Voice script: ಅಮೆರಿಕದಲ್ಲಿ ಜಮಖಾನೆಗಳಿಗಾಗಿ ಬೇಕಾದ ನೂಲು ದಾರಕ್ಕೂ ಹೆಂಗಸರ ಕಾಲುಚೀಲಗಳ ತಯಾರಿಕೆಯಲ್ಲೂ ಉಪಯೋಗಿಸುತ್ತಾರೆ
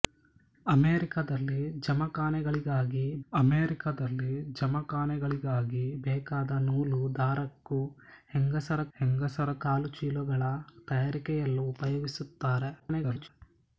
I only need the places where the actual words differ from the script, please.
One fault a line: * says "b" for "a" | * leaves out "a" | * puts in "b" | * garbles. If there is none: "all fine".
* puts in "ಅಮೆರಿಕದಲ್ಲಿ ಜಮಖಾನೆಗಳಿಗಾಗಿ"
* puts in "ಹೆಂಗಸರ"
* garbles